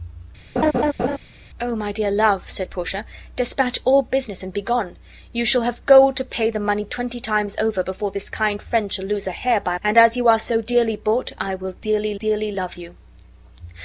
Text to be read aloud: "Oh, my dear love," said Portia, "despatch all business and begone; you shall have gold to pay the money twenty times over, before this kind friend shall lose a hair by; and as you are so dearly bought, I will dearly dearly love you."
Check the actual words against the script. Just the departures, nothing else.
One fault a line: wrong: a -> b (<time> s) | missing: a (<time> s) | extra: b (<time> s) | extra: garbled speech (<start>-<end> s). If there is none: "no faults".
no faults